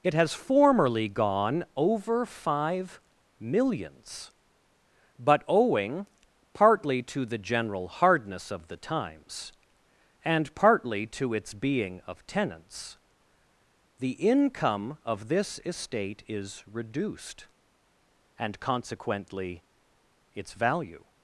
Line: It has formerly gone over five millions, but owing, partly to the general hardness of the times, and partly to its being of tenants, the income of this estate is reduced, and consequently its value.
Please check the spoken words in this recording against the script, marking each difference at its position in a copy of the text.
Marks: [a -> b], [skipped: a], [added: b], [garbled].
It has formerly gone over five millions, but owing, partly to the general hardness of the times, and partly to its being of tenants, the income of this estate is reduced, and consequently its value.